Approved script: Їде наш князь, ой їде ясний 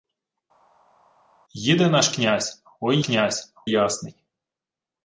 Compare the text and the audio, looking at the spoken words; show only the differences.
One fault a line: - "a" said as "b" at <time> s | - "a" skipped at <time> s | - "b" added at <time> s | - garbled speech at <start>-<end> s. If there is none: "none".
- "їде" said as "князь" at 3.0 s